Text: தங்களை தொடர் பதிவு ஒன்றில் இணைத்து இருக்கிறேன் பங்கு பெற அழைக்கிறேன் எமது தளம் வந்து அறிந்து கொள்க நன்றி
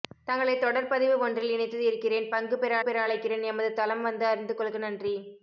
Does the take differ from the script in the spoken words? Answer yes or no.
yes